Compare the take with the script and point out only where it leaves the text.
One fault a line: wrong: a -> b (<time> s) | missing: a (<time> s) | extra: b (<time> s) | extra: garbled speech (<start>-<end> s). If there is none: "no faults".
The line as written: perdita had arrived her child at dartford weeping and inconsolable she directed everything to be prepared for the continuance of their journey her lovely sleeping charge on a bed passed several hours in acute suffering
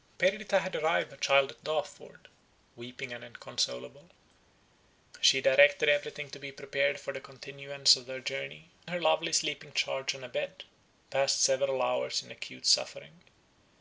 no faults